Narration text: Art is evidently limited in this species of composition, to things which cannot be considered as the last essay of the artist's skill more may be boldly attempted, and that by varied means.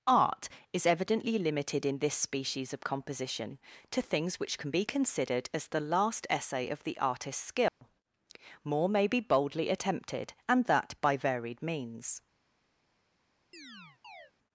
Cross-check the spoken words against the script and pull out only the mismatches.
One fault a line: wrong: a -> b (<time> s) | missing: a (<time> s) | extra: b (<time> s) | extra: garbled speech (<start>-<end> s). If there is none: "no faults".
wrong: cannot -> can (4.6 s)